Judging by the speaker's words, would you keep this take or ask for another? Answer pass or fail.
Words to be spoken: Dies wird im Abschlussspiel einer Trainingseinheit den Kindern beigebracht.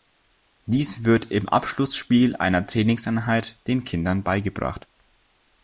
pass